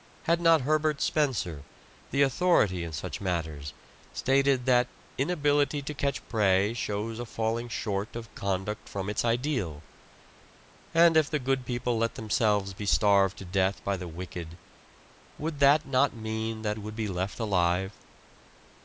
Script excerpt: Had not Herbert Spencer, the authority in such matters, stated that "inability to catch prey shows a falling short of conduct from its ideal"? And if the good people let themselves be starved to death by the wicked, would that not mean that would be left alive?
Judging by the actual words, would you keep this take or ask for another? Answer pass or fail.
pass